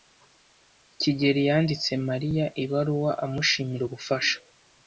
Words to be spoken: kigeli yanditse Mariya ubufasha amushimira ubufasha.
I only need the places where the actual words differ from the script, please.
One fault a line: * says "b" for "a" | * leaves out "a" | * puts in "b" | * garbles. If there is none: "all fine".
* says "ibaruwa" for "ubufasha"